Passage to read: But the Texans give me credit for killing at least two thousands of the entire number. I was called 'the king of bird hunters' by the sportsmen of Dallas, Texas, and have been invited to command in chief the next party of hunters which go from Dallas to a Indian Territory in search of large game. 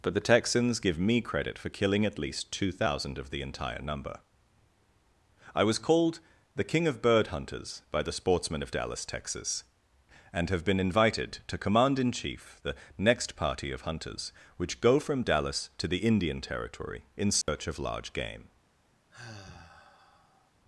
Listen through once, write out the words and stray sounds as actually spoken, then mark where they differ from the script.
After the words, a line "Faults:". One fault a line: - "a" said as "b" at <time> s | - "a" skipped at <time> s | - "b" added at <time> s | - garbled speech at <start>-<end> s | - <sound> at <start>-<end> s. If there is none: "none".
But the Texans give me credit for killing at least two thousand of the entire number. I was called 'the king of bird hunters' by the sportsmen of Dallas, Texas, and have been invited to command in chief the next party of hunters which go from Dallas to the Indian Territory in search of large game.
Faults:
- "thousands" said as "thousand" at 2.7 s
- "a" said as "the" at 15.9 s
- dropout at 17.4-17.5 s
- sigh at 19.1-20.5 s